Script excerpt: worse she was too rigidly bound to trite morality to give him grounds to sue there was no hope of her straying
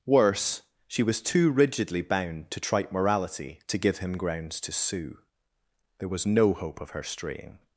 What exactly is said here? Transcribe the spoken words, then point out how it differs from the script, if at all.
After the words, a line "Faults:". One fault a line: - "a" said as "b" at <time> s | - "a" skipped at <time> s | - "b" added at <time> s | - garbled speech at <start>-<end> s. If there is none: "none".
worse she was too rigidly bound to trite morality to give him grounds to sue there was no hope of her straying
Faults:
none